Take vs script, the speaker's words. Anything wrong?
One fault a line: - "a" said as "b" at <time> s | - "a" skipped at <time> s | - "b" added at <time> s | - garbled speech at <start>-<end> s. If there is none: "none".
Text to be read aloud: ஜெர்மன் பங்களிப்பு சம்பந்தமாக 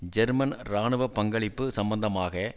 - "இராணுவ" added at 0.6 s